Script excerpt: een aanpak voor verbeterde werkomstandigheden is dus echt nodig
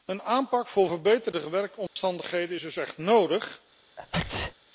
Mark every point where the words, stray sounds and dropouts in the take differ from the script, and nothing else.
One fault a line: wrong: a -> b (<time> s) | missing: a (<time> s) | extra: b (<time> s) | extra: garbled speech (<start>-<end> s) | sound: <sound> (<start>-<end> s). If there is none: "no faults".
sound: dropout (1.9-2.0 s)
sound: sneeze (4.0-4.5 s)